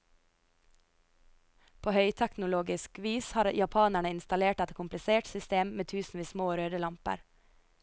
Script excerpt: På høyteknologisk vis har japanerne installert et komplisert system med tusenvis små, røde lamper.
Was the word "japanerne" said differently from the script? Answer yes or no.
no